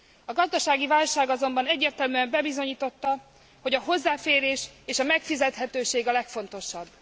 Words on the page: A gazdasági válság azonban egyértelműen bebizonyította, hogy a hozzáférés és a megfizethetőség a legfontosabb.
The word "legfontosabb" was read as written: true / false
true